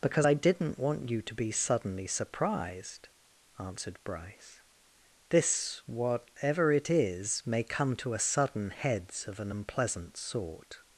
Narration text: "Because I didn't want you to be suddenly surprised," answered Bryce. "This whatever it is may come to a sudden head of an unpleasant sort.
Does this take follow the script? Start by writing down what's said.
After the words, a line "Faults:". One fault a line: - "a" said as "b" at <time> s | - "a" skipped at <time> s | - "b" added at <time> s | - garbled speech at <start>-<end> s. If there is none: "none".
"Because I didn't want you to be suddenly surprised," answered Bryce. "This whatever it is may come to a sudden heads of an unpleasant sort.
Faults:
- "head" said as "heads" at 8.7 s